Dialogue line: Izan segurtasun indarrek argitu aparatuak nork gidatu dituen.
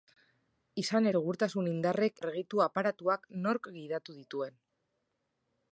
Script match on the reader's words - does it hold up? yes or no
yes